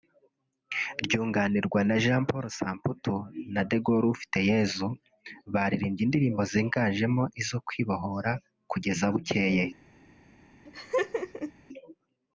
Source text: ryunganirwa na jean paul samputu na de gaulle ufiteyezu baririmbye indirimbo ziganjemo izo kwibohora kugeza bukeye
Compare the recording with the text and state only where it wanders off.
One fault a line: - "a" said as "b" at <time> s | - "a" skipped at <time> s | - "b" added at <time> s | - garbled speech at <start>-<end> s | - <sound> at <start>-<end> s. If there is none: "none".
- laugh at 10.7-11.5 s